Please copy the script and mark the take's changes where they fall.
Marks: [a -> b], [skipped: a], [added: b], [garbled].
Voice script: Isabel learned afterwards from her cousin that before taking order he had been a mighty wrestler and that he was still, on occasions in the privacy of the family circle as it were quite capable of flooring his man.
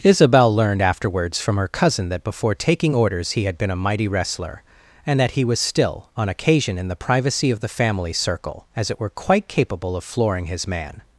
Isabel learned afterwards from her cousin that before taking [order -> orders] he had been a mighty wrestler and that he was still, on [occasions -> occasion] in the privacy of the family circle as it were quite capable of flooring his man.